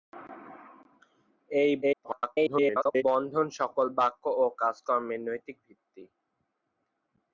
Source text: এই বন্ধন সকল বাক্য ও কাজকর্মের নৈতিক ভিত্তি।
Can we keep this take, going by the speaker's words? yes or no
no